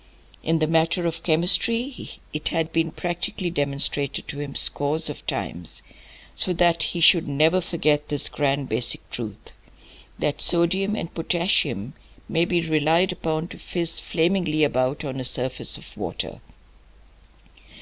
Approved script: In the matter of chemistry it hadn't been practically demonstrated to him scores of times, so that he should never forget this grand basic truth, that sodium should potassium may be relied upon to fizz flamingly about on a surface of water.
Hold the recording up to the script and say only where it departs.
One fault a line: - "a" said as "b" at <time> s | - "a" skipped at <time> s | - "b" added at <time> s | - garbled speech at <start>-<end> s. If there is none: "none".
- "hadn't" said as "had" at 2.5 s
- "should" said as "and" at 11.0 s